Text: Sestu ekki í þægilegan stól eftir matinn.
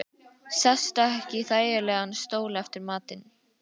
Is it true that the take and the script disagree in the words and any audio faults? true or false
false